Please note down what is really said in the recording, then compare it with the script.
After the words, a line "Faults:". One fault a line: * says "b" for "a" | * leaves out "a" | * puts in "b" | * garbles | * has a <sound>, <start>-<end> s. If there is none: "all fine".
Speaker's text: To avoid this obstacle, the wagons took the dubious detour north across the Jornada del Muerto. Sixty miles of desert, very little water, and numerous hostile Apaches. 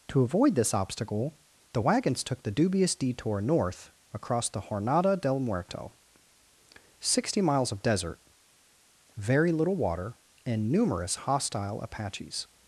To avoid this obstacle, the wagons took the dubious detour north across the Jornada del Muerto. Sixty miles of desert, very little water, and numerous hostile Apaches.
Faults:
all fine